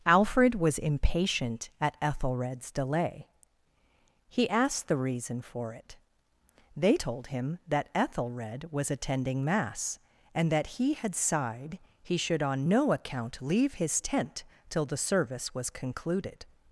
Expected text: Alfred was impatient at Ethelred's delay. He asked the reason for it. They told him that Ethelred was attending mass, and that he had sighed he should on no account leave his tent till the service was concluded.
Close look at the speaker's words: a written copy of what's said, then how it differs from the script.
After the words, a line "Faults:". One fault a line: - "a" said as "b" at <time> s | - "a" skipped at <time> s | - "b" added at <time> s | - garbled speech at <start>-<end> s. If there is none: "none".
Alfred was impatient at Ethelred's delay. He asked the reason for it. They told him that Ethelred was attending mass, and that he had sighed he should on no account leave his tent till the service was concluded.
Faults:
none